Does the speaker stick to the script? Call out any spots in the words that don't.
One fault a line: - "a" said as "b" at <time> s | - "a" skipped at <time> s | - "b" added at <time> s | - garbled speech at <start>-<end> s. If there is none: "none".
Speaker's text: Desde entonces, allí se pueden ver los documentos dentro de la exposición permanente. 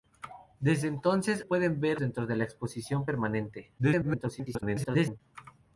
- "allí se" skipped at 1.4 s
- "los documentos" skipped at 2.0 s
- garbled speech at 3.8-5.2 s